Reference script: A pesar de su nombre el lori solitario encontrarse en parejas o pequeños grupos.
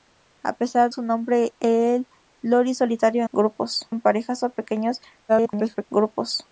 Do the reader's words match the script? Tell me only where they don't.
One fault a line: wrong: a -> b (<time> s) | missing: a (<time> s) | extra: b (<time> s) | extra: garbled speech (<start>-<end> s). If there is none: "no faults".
missing: de (0.9 s)
wrong: encontrarse -> grupos (3.3 s)
extra: garbled speech (5.3-5.8 s)